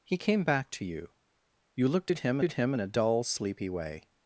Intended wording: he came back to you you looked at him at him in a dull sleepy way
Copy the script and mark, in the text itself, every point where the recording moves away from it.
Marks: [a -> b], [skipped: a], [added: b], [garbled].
he came back to you you looked at him at him in a dull sleepy way